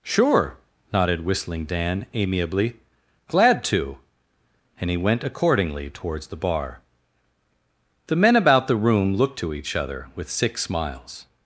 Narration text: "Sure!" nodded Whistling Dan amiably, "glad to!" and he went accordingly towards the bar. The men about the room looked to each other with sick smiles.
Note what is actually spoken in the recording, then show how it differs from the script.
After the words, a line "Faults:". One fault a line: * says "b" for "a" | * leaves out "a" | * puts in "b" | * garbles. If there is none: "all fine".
"Sure!" nodded Whistling Dan amiably, "glad to!" and he went accordingly towards the bar. The men about the room looked to each other with sick smiles.
Faults:
all fine